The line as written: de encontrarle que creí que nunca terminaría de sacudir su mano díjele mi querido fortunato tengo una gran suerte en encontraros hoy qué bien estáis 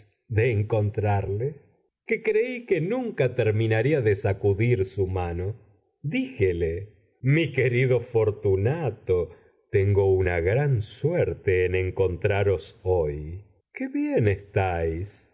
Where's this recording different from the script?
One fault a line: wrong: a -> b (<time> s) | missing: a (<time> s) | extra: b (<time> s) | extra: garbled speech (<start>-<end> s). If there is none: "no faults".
no faults